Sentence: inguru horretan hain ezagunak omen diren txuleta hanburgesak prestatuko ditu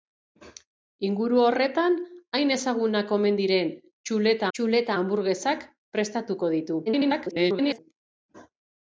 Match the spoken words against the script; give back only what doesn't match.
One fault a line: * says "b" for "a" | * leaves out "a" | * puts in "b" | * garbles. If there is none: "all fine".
* puts in "txuleta"
* garbles